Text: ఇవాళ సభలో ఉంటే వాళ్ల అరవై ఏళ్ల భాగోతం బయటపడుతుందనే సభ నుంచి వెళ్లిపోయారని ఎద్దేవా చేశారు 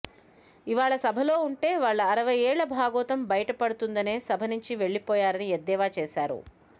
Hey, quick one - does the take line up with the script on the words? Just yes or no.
yes